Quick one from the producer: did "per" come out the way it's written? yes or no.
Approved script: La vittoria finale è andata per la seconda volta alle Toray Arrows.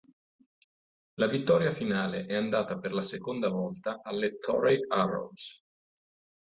yes